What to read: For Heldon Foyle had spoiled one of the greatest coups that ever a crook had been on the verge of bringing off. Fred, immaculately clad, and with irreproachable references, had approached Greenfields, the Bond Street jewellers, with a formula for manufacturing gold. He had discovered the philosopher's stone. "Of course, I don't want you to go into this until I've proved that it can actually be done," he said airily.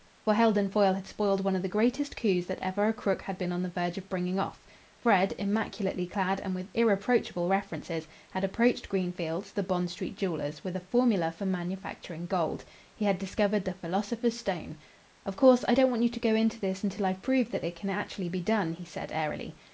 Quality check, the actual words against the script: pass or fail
pass